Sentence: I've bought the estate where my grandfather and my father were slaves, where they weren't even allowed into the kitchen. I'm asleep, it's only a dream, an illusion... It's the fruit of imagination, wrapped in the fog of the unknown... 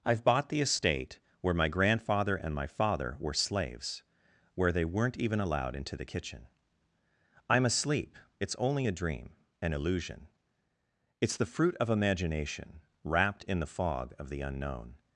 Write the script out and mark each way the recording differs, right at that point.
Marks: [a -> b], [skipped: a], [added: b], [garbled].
I've bought the estate where my grandfather and my father were slaves, where they weren't even allowed into the kitchen. I'm asleep, it's only a dream, an illusion... It's the fruit of imagination, wrapped in the fog of the unknown...